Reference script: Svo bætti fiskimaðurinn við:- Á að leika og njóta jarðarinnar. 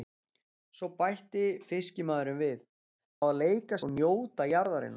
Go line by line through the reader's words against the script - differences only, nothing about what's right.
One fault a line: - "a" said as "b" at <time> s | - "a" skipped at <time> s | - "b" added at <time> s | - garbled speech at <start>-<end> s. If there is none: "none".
none